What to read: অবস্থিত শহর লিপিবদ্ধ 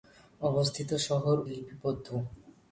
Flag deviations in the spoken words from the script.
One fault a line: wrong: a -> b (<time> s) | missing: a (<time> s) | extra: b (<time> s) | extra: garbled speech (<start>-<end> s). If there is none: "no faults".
no faults